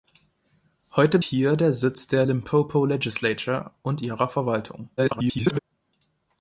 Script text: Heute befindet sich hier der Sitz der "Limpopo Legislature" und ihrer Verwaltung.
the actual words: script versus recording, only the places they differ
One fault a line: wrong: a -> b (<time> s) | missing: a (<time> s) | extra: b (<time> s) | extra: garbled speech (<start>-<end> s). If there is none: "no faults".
missing: befindet sich (1.2 s)
extra: garbled speech (5.0-5.6 s)